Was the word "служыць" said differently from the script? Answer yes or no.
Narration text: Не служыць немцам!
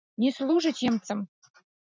no